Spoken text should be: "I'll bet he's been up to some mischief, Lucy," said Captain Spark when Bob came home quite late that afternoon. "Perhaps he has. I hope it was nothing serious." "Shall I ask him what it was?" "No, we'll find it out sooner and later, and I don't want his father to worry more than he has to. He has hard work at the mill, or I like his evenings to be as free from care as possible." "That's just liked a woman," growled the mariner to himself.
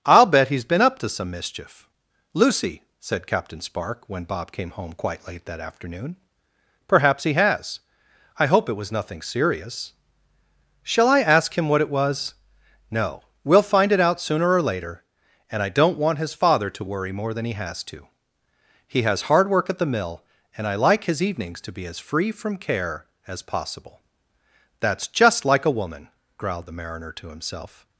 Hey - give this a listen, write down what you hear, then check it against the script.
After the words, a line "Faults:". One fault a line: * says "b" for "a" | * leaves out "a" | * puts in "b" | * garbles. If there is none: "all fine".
"I'll bet he's been up to some mischief, Lucy," said Captain Spark when Bob came home quite late that afternoon. "Perhaps he has. I hope it was nothing serious." "Shall I ask him what it was?" "No, we'll find it out sooner or later, and I don't want his father to worry more than he has to. He has hard work at the mill, and I like his evenings to be as free from care as possible." "That's just like a woman," growled the mariner to himself.
Faults:
* says "or" for "and"
* says "and" for "or"
* says "like" for "liked"